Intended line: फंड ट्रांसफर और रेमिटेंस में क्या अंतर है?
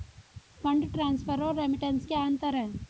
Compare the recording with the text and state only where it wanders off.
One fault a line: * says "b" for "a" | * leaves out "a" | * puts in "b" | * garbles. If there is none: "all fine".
* leaves out "में"